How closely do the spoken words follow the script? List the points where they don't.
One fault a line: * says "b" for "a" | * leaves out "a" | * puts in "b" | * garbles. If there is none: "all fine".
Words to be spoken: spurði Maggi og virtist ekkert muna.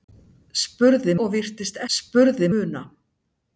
* leaves out "Maggi"
* says "spurði" for "ekkert"